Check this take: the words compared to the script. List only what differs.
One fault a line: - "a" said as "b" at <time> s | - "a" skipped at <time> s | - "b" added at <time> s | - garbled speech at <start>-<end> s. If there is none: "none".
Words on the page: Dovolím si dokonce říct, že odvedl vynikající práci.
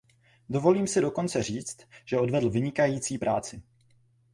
none